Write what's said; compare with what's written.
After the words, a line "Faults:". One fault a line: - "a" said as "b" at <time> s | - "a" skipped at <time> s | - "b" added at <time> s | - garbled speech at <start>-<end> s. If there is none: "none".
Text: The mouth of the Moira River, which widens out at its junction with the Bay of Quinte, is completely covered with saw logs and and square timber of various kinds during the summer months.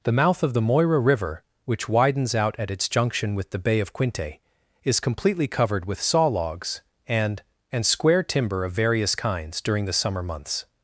The mouth of the Moira River, which widens out at its junction with the Bay of Quinte, is completely covered with saw logs and and square timber of various kinds during the summer months.
Faults:
none